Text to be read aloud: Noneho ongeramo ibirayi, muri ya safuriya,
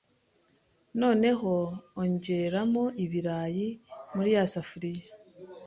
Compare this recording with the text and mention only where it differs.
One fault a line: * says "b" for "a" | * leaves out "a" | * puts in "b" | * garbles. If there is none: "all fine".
all fine